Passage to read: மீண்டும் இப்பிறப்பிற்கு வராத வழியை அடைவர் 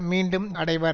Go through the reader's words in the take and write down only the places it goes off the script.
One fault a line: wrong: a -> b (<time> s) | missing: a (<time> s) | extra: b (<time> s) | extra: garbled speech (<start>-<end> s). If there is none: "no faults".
missing: இப்பிறப்பிற்கு வராத வழியை (0.6 s)